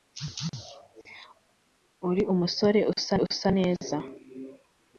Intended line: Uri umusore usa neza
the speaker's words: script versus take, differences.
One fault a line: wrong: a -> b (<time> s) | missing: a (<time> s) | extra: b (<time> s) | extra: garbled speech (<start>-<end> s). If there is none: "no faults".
extra: usa (3.3 s)